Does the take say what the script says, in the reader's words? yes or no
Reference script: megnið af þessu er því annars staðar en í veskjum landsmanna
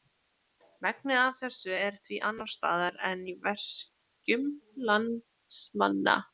yes